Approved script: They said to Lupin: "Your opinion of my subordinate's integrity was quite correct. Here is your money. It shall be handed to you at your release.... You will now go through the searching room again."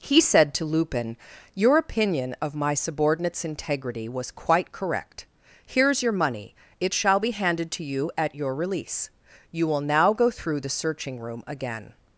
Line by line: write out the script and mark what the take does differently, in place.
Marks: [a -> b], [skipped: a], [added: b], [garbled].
[They -> He] said to Lupin: "Your opinion of my subordinate's integrity was quite correct. Here is your money. It shall be handed to you at your release.... You will now go through the searching room again."